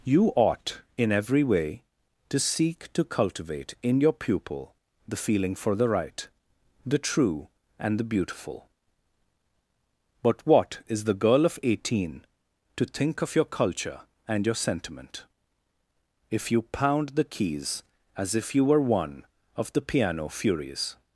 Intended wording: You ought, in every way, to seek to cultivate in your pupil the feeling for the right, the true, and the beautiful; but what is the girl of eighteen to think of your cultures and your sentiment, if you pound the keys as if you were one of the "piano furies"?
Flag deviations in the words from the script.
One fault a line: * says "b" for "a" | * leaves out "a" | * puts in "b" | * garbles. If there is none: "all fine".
* says "culture" for "cultures"